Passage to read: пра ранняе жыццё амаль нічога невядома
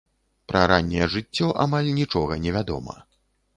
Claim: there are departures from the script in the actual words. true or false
false